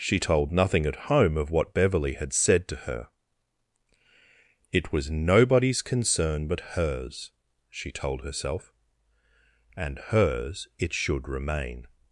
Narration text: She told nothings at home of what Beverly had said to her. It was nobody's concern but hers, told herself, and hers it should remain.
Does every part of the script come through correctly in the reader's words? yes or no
no